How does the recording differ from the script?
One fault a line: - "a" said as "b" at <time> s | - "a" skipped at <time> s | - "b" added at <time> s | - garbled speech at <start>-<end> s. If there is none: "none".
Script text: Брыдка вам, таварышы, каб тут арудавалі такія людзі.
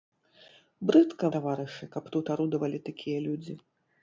- "вам" skipped at 1.3 s